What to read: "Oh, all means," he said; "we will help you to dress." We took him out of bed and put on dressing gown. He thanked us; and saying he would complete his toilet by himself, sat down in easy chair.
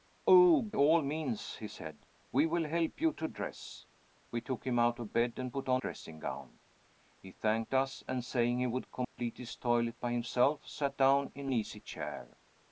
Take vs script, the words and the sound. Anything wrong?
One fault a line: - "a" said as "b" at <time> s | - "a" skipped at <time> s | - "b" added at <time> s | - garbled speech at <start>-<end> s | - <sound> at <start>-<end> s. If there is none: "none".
- dropout at 9.0-9.2 s